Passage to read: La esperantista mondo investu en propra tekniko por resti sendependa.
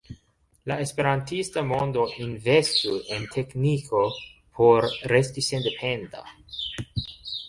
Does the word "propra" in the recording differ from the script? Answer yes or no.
yes